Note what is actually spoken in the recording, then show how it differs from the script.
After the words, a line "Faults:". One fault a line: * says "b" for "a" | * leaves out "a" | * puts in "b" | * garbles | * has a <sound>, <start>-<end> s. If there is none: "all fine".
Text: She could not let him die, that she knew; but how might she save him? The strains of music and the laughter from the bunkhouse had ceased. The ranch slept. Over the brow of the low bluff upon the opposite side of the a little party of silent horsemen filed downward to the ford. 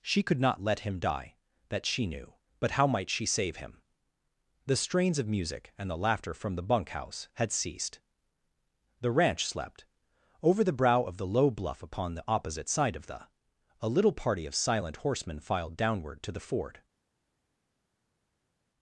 She could not let him die, that she knew; but how might she save him? The strains of music and the laughter from the bunkhouse had ceased. The ranch slept. Over the brow of the low bluff upon the opposite side of the a little party of silent horsemen filed downward to the ford.
Faults:
all fine